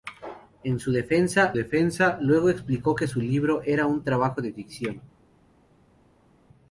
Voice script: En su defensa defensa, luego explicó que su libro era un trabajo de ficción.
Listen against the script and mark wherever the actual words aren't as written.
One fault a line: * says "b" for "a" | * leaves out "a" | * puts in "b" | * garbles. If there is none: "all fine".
all fine